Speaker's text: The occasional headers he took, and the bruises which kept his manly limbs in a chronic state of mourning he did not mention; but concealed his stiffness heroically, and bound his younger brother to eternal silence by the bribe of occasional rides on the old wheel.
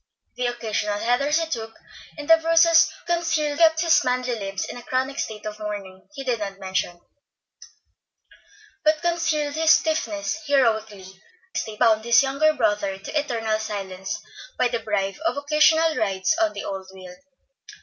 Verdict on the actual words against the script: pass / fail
fail